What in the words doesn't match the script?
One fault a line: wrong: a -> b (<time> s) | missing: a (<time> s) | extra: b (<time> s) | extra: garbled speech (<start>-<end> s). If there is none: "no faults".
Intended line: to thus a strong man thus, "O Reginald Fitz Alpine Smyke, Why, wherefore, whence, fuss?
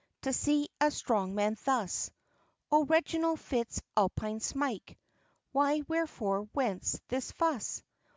wrong: thus -> see (0.3 s)
extra: this (7.1 s)